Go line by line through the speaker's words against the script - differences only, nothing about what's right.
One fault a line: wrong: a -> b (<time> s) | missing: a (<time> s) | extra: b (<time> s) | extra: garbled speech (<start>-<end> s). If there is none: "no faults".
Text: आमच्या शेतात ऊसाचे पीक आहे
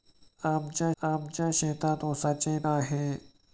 extra: आमच्या (1.0 s)
missing: पीक (2.6 s)